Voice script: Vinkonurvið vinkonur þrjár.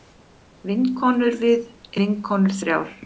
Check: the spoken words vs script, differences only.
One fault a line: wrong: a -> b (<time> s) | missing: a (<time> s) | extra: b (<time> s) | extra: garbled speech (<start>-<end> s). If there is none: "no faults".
no faults